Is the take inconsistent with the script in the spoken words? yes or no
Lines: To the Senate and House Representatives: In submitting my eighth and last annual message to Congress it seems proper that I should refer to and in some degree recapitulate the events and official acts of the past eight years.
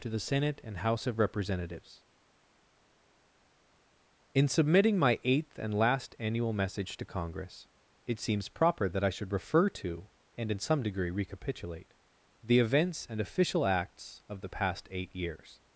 yes